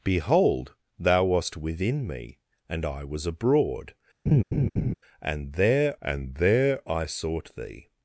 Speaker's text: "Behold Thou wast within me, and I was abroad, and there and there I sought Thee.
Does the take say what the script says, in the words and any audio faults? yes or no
no